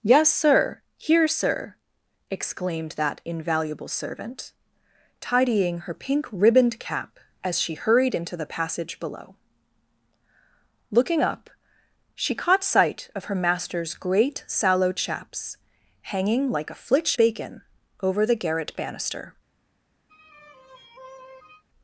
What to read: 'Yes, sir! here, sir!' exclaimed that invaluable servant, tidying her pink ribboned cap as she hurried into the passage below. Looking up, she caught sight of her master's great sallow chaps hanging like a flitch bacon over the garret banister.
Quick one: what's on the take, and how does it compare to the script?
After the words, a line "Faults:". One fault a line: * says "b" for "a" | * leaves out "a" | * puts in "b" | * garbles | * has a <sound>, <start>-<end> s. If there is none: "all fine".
'Yes, sir! here, sir!' exclaimed that invaluable servant, tidying her pink ribboned cap as she hurried into the passage below. Looking up, she caught sight of her master's great sallow chaps hanging like a flitch bacon over the garret banister.
Faults:
* has a sigh, 20.1-21.6 s